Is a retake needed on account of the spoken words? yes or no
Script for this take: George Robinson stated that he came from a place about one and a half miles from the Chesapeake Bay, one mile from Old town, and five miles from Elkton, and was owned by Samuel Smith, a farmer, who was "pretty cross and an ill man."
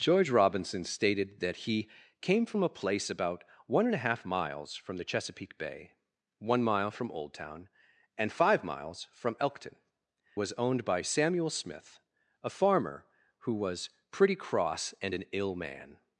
yes